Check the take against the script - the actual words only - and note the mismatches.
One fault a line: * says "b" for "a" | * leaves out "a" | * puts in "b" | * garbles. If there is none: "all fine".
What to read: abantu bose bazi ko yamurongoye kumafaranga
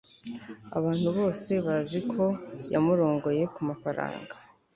all fine